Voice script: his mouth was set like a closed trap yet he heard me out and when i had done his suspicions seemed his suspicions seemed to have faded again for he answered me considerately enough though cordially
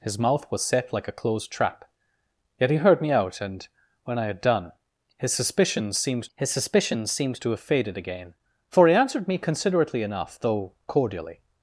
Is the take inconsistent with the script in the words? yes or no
no